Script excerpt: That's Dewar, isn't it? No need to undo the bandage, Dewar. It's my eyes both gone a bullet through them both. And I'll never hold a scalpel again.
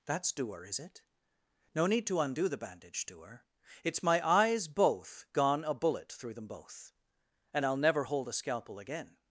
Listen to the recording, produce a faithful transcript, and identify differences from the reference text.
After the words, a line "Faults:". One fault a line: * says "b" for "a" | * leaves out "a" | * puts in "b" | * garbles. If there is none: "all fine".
That's Dewar, is it? No need to undo the bandage, Dewar. It's my eyes both gone a bullet through them both. And I'll never hold a scalpel again.
Faults:
* says "is" for "isn't"